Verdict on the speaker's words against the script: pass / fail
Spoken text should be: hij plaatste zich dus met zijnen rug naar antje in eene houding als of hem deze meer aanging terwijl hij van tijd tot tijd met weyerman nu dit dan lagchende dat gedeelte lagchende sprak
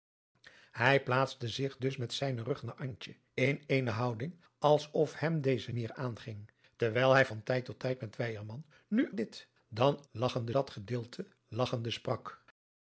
pass